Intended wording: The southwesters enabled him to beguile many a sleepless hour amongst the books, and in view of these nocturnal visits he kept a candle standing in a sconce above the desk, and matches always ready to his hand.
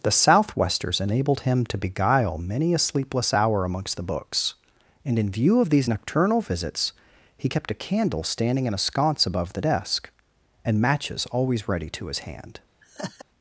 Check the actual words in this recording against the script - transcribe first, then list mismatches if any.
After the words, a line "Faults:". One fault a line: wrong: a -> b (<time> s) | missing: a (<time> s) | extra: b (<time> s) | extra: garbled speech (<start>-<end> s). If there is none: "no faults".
The southwesters enabled him to beguile many a sleepless hour amongst the books, and in view of these nocturnal visits he kept a candle standing in a sconce above the desk, and matches always ready to his hand.
Faults:
no faults